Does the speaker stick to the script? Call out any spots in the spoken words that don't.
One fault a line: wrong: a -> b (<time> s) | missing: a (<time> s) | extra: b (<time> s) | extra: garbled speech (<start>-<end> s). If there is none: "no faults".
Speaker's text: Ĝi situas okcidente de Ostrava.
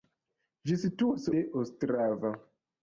missing: okcidente (1.3 s)